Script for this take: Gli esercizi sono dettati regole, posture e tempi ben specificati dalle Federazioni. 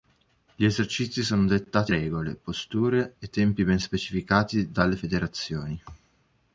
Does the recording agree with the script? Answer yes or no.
yes